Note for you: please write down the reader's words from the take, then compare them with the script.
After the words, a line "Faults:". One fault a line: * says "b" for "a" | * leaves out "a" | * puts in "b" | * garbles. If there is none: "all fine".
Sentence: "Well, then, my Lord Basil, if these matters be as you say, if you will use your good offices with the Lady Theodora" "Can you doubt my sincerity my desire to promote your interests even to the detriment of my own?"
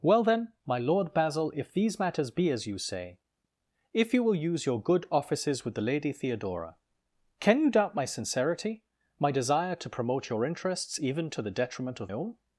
"Well, then, my Lord Basil, if these matters be as you say, if you will use your good offices with the Lady Theodora" "Can you doubt my sincerity my desire to promote your interests even to the detriment of own?"
Faults:
* leaves out "my"